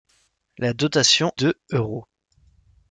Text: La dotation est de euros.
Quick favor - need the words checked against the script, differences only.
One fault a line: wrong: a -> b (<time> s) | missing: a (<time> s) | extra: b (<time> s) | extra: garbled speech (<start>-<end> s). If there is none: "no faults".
missing: est (1.3 s)